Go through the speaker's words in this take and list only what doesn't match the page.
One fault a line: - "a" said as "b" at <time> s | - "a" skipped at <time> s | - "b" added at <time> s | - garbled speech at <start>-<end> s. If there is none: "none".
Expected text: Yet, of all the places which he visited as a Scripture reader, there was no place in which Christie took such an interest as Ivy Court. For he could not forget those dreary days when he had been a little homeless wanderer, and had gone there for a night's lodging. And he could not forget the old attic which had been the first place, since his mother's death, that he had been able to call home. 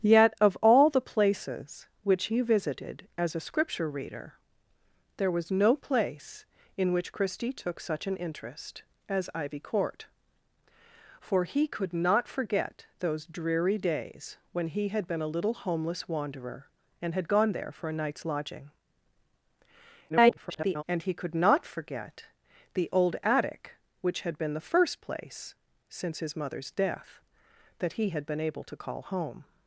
- garbled speech at 20.1-20.8 s